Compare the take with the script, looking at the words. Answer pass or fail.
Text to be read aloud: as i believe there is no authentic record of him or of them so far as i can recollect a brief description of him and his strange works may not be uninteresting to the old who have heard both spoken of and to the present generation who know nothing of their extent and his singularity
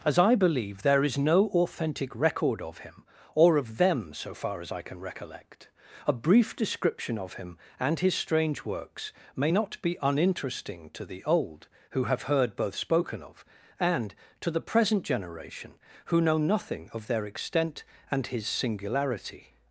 pass